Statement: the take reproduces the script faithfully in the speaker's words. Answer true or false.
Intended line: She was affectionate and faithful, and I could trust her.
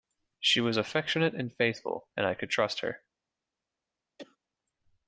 true